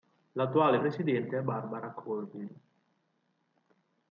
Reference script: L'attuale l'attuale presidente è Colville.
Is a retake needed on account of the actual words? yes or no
yes